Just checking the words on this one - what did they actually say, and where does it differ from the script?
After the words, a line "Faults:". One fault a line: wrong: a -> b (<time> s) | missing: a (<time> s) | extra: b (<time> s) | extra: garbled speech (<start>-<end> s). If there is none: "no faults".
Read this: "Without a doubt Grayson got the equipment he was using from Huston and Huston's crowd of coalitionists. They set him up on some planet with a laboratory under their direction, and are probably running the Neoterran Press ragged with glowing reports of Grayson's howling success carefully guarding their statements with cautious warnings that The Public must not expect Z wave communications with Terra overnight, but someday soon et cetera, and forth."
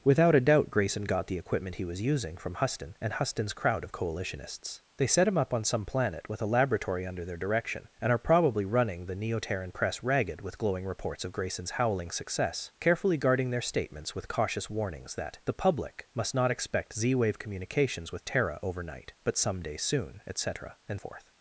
"Without a doubt Grayson got the equipment he was using from Huston and Huston's crowd of coalitionists. They set him up on some planet with a laboratory under their direction, and are probably running the Neoterran Press ragged with glowing reports of Grayson's howling success carefully guarding their statements with cautious warnings that The Public must not expect Z wave communications with Terra overnight, but someday soon et cetera, and forth."
Faults:
no faults